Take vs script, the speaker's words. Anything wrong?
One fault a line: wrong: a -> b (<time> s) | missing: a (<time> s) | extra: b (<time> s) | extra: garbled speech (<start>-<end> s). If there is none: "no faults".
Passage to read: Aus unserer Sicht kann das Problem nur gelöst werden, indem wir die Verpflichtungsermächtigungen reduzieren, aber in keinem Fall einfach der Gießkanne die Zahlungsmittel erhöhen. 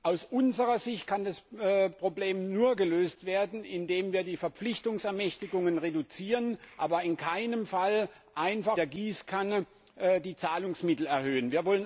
no faults